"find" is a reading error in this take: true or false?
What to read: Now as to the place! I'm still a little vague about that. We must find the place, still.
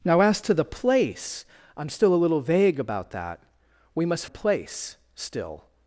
true